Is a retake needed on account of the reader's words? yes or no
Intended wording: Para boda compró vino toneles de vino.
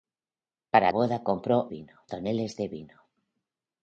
no